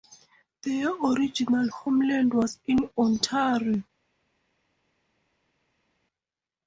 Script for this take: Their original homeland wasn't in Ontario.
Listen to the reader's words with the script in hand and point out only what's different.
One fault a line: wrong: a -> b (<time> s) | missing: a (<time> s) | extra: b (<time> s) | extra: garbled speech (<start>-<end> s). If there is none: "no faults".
wrong: wasn't -> was (2.3 s)